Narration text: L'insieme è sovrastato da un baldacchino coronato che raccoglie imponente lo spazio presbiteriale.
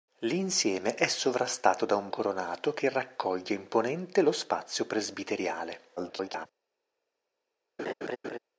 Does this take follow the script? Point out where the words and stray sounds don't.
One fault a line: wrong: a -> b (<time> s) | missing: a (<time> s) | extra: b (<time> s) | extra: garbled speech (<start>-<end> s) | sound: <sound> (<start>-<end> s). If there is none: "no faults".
missing: baldacchino (2.1 s)
extra: garbled speech (6.0-6.5 s)
sound: laugh (7.8-8.4 s)